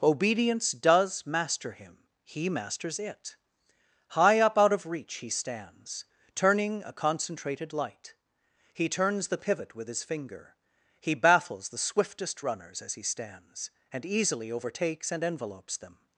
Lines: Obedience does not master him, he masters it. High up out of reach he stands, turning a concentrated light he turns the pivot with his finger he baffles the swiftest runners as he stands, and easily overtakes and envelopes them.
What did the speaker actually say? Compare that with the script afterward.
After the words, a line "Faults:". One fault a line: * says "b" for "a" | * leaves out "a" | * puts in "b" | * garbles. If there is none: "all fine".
Obedience does master him, he masters it. High up out of reach he stands, turning a concentrated light he turns the pivot with his finger he baffles the swiftest runners as he stands, and easily overtakes and envelopes them.
Faults:
* leaves out "not"